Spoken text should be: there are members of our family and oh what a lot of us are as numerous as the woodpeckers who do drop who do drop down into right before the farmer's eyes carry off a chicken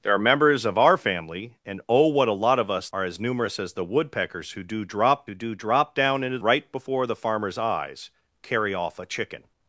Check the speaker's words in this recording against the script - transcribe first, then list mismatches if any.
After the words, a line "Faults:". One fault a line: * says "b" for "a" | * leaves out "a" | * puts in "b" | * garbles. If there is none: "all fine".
there are members of our family and oh what a lot of us are as numerous as the woodpeckers who do drop who do drop down into right before the farmer's eyes carry off a chicken
Faults:
all fine